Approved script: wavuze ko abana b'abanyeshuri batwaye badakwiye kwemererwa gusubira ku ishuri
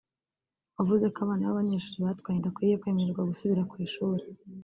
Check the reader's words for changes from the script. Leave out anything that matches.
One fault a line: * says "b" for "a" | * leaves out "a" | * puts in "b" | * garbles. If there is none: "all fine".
all fine